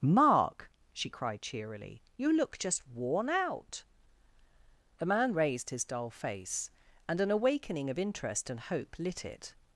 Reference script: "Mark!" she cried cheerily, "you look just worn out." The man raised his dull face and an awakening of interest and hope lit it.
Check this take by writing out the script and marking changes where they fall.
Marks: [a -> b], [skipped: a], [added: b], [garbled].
"Mark!" she cried cheerily, "you look just worn out." The man raised his dull face and an awakening of interest and hope lit it.